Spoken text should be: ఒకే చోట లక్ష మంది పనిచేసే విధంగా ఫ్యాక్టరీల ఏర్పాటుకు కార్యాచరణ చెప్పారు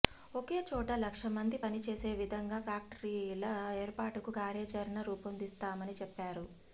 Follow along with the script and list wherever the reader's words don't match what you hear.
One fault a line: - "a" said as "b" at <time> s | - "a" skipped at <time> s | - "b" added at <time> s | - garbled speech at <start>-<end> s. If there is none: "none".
- "రూపొందిస్తామని" added at 5.1 s